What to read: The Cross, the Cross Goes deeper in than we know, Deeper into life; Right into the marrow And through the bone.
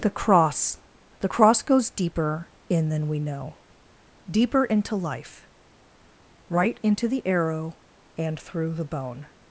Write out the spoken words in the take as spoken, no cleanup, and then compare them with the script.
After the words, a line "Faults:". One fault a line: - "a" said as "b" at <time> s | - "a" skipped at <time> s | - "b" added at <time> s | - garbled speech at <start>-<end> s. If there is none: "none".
The Cross, the Cross Goes deeper in than we know, Deeper into life; Right into the arrow And through the bone.
Faults:
- "marrow" said as "arrow" at 7.2 s